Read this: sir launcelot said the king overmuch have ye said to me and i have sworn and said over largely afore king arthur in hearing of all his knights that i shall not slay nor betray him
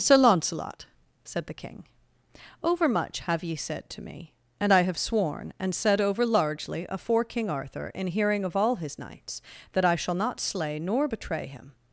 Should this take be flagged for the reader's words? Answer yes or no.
no